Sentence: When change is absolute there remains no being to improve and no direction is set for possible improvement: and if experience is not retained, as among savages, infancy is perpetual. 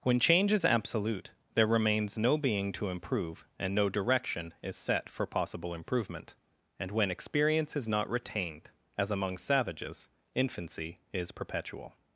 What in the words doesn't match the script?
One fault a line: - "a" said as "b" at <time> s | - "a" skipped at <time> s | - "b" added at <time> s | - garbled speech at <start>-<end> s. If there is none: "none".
- "if" said as "when" at 6.9 s